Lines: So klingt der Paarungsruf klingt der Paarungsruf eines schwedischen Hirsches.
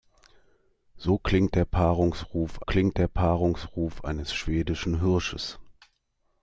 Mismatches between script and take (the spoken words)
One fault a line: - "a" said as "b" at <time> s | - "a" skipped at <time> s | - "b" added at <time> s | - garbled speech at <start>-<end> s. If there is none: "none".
none